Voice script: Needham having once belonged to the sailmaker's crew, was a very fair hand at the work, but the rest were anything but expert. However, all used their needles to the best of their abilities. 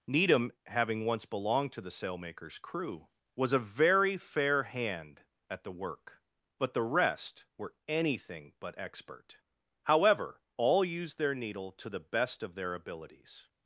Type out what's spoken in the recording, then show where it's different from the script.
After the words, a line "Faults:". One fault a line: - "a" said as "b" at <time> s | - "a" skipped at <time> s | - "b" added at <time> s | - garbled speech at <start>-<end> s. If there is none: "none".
Needham having once belonged to the sailmaker's crew, was a very fair hand at the work, but the rest were anything but expert. However, all used their needle to the best of their abilities.
Faults:
- "needles" said as "needle" at 11.3 s